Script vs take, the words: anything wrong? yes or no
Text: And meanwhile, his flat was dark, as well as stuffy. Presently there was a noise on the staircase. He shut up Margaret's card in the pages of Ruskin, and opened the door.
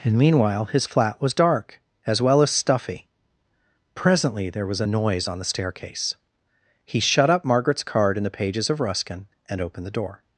no